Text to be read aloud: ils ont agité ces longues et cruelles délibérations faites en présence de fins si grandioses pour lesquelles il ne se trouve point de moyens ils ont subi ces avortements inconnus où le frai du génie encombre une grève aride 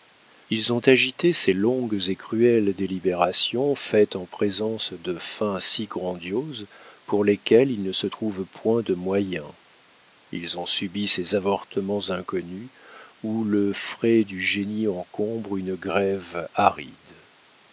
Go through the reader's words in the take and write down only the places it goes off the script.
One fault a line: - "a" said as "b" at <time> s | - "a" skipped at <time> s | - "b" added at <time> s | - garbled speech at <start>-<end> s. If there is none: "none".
none